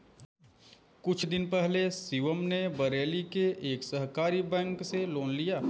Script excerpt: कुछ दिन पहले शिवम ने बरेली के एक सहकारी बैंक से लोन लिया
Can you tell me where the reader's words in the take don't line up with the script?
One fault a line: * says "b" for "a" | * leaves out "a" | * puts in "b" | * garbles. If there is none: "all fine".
all fine